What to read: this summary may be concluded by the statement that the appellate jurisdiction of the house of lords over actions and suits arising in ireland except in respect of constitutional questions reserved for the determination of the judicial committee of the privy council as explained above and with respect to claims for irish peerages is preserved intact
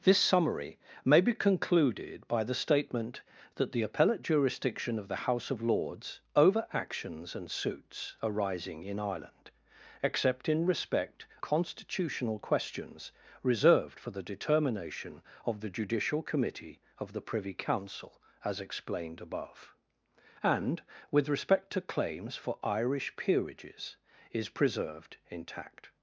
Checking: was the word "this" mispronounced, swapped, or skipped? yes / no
no